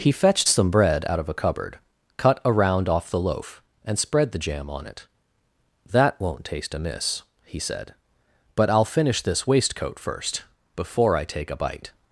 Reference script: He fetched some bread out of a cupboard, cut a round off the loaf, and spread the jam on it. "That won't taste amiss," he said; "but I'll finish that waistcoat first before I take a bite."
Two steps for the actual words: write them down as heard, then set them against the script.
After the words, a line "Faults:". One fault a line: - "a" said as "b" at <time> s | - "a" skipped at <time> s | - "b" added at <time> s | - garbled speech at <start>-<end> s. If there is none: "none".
He fetched some bread out of a cupboard, cut a round off the loaf, and spread the jam on it. "That won't taste amiss," he said; "but I'll finish this waistcoat first before I take a bite."
Faults:
- "that" said as "this" at 9.2 s